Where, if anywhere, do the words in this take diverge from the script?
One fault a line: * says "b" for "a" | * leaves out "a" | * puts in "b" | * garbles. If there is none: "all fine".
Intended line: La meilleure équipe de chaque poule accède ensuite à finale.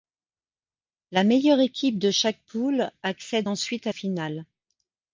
all fine